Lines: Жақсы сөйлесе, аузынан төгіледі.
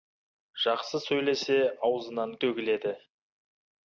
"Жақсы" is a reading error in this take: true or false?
false